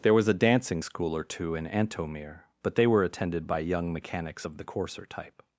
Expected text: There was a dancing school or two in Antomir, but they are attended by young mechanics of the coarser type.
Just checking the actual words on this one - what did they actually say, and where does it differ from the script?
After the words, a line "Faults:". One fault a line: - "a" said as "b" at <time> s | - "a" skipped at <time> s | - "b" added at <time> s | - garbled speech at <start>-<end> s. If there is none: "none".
There was a dancing school or two in Antomir, but they were attended by young mechanics of the coarser type.
Faults:
- "are" said as "were" at 2.9 s